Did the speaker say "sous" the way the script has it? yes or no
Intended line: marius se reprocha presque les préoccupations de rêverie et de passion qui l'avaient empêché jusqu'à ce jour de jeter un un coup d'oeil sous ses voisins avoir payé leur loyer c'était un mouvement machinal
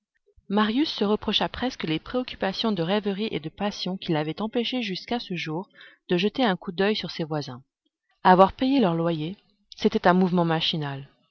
no